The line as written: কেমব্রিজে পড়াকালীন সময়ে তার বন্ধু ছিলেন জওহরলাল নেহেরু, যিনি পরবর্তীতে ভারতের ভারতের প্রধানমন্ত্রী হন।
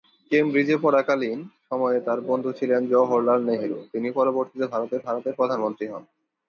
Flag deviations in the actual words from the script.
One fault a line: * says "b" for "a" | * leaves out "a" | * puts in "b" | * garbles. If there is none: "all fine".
all fine